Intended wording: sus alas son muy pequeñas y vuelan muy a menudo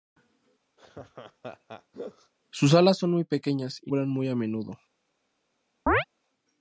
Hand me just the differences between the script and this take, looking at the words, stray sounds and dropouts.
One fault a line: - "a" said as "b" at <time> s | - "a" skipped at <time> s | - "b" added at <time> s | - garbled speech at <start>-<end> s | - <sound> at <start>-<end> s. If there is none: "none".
- laugh at 0.8-2.3 s
- chirp at 5.9-6.0 s